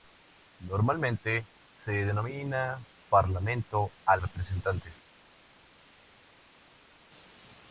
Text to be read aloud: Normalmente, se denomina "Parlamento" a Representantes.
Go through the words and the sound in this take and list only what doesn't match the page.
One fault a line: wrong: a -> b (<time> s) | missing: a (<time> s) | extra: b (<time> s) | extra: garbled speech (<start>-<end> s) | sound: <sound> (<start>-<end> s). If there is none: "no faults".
no faults